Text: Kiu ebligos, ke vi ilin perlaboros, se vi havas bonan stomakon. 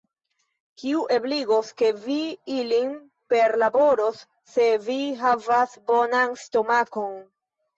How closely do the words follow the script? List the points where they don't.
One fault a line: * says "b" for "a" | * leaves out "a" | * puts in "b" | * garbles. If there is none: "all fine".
all fine